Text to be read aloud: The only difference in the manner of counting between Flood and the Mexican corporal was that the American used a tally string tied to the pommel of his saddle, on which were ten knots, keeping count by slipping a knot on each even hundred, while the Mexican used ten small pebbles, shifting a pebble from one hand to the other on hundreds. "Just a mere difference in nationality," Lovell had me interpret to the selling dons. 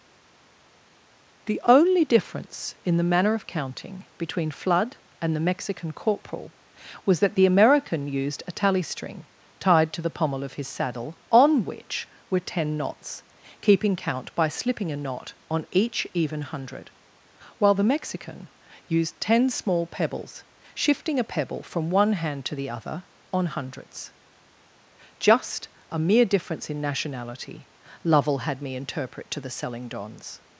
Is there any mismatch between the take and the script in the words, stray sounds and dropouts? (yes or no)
no